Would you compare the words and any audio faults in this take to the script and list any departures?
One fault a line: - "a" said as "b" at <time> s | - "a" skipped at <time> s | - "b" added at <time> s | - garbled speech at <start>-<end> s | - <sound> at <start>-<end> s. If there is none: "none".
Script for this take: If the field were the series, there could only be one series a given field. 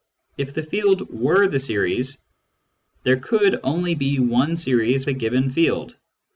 none